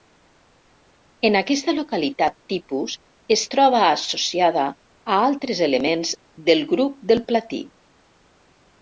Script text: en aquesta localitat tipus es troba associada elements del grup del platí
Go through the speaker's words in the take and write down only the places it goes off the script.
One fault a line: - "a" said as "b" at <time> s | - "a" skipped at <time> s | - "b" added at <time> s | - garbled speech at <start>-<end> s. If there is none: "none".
- "a altres" added at 4.7 s